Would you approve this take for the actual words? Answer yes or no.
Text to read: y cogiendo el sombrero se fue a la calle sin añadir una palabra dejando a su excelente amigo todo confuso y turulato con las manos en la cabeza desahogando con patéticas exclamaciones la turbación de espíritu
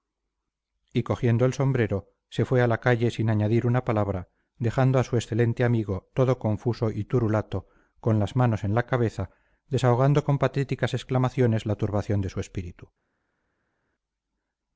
no